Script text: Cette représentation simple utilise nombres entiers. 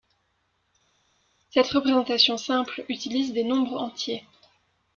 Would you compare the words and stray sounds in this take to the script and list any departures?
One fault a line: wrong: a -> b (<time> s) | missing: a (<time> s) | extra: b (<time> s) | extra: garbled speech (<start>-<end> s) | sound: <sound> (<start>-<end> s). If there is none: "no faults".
extra: des (3.3 s)